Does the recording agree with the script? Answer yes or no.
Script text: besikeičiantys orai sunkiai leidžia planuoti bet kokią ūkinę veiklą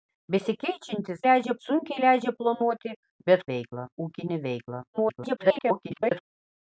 no